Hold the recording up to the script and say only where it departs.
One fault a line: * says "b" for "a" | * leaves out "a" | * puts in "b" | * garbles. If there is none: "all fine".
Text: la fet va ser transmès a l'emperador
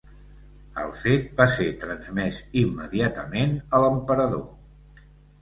* says "el" for "la"
* puts in "immediatament"